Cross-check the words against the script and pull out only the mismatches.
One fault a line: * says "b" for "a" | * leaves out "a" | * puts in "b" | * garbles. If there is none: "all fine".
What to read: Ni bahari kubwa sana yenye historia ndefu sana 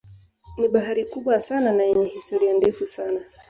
* puts in "na"